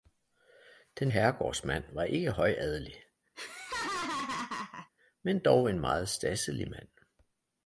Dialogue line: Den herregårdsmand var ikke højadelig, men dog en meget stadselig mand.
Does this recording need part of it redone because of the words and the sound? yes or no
yes